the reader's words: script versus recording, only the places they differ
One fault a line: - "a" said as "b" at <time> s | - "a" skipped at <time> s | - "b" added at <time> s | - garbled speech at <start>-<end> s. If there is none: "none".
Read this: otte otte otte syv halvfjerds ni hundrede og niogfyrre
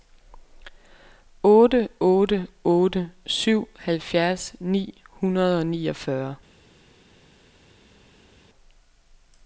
none